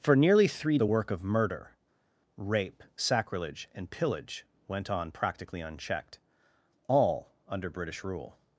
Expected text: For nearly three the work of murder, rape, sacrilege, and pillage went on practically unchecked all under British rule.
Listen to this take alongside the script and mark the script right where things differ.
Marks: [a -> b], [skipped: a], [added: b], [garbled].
For nearly three the work of murder, rape, sacrilege, and pillage went on practically unchecked all under British rule.